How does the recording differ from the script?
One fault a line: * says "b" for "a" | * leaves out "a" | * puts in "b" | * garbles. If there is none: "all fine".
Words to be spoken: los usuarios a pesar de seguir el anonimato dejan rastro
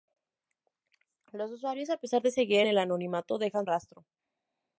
all fine